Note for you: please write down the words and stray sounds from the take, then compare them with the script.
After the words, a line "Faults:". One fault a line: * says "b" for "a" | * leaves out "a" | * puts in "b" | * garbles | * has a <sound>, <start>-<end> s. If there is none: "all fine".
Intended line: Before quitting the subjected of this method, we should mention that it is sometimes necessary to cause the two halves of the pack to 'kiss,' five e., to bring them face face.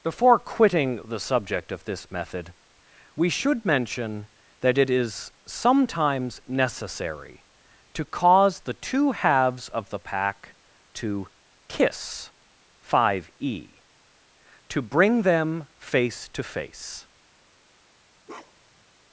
Before quitting the subject of this method, we should mention that it is sometimes necessary to cause the two halves of the pack to 'kiss,' five e., to bring them face to face.
Faults:
* says "subject" for "subjected"
* puts in "to"
* has a bark, 18.2-18.8 s